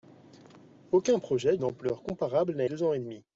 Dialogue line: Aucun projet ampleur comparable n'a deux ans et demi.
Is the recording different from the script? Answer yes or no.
no